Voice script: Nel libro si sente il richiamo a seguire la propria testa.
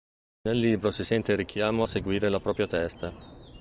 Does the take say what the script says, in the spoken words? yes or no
yes